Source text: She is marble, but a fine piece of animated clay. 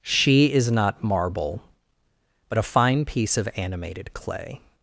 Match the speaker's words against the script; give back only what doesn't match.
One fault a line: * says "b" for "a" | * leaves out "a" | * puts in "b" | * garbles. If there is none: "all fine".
* puts in "not"